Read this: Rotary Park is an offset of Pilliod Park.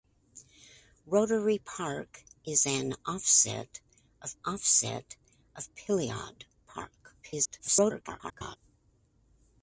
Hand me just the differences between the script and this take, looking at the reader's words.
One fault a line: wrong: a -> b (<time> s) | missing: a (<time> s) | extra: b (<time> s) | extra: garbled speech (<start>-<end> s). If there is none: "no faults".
extra: offset of (4.4 s)
extra: garbled speech (7.2-8.6 s)